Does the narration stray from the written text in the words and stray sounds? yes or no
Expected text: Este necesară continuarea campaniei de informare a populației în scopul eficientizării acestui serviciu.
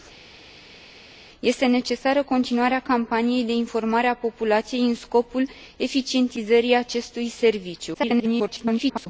yes